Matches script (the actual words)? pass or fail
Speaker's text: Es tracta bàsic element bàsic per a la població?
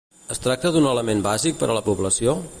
fail